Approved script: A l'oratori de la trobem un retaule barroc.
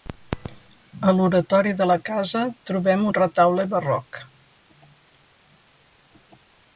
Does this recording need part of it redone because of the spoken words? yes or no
yes